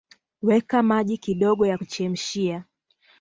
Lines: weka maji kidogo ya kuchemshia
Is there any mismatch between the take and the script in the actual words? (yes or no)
no